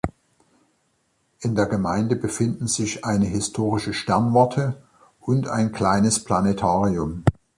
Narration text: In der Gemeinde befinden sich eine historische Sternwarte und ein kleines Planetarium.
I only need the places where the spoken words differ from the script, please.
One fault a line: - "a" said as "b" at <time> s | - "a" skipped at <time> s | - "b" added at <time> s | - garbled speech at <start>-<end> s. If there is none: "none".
none